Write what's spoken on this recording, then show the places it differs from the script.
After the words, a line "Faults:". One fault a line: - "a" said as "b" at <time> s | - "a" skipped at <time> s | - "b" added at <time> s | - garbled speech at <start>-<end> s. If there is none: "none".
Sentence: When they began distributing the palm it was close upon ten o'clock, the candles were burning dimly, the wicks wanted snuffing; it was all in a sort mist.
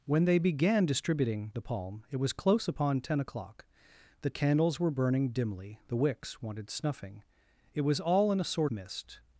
When they began distributing the palm it was close upon ten o'clock, the candles were burning dimly, the wicks wanted snuffing; it was all in a sort mist.
Faults:
none